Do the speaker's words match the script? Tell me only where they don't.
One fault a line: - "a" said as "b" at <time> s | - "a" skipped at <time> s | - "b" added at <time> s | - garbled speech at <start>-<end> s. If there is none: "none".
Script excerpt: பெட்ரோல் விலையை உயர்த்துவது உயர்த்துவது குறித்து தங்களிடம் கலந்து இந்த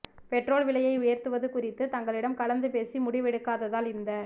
- "உயர்த்துவது" skipped at 1.5 s
- "பேசி முடிவெடுக்காததால்" added at 2.7 s